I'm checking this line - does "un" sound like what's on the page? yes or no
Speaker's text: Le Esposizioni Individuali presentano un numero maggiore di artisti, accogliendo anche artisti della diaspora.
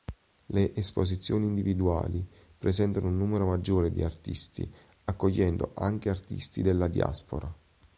yes